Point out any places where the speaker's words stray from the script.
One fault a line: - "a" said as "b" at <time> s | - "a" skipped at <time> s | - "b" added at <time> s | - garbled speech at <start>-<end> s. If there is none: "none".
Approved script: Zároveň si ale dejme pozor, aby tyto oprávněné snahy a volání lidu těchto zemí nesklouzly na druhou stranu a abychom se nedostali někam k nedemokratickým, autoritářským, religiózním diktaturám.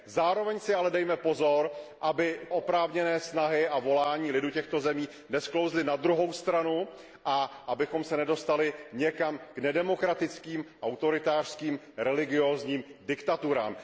- "tyto" skipped at 2.4 s